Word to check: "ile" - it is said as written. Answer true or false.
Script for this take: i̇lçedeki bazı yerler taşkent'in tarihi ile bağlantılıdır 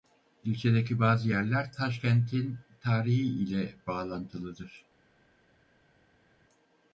true